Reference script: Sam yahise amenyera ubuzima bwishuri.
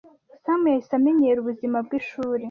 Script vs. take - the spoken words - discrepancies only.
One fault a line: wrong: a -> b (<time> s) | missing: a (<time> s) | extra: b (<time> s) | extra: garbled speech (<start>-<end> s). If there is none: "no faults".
no faults